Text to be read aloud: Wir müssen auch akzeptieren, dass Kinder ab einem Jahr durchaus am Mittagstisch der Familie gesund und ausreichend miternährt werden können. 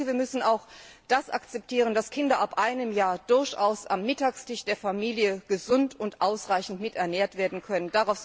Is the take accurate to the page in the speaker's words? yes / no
yes